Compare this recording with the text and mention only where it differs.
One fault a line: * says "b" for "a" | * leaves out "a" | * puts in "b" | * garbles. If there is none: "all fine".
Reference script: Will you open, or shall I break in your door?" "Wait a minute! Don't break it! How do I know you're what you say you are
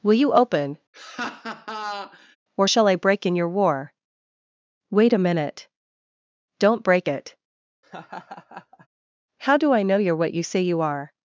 * says "war" for "door"